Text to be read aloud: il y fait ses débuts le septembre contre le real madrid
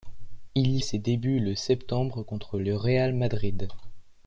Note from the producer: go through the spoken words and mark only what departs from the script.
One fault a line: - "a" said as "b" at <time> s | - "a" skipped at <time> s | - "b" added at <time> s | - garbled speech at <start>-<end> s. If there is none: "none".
- "fait" skipped at 0.8 s